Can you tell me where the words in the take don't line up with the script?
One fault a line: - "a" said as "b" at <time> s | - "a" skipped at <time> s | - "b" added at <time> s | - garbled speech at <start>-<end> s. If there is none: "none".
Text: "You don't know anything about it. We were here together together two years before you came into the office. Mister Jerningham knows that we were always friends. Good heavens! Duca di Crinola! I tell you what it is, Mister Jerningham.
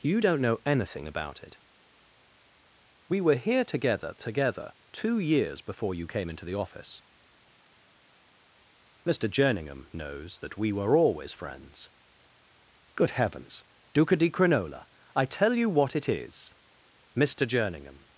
none